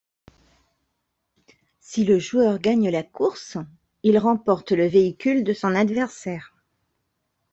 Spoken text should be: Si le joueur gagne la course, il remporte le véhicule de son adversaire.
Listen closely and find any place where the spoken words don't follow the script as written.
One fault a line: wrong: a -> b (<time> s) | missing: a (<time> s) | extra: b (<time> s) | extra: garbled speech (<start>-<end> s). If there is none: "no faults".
no faults